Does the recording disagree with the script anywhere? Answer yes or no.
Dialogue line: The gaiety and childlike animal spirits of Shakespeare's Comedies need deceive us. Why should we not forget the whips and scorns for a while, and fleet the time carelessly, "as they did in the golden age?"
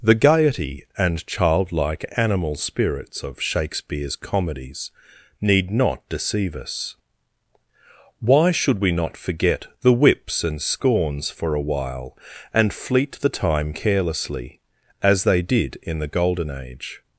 yes